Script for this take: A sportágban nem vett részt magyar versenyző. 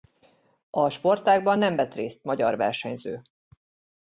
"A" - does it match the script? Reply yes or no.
yes